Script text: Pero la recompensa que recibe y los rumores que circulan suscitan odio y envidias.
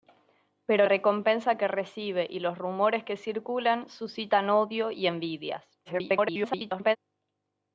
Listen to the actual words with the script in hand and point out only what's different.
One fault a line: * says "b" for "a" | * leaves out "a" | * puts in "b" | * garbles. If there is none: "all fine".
* leaves out "la"
* garbles